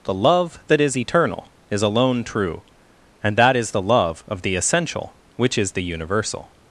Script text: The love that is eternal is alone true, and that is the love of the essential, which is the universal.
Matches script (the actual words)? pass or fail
pass